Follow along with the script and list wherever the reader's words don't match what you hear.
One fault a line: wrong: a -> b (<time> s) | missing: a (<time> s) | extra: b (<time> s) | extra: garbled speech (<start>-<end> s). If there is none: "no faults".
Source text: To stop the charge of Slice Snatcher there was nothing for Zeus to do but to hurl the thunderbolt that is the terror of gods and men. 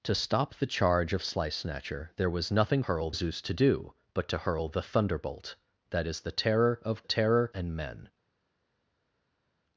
wrong: for -> hurl (2.8 s)
wrong: gods -> terror (7.0 s)